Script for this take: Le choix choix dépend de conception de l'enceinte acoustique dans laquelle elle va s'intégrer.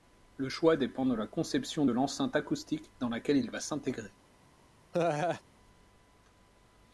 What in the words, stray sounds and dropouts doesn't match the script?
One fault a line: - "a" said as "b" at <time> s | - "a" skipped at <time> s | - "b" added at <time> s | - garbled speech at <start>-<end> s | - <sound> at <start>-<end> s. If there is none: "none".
- "choix" skipped at 0.8 s
- "la" added at 1.1 s
- "elle" said as "il" at 3.4 s
- laugh at 4.9-5.4 s